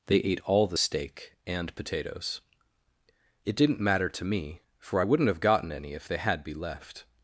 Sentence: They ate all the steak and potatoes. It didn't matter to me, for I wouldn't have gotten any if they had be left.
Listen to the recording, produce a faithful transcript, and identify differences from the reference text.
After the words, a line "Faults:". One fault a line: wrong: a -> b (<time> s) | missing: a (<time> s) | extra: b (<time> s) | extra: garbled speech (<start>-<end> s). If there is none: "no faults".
They ate all the steak and potatoes. It didn't matter to me, for I wouldn't have gotten any if they had be left.
Faults:
no faults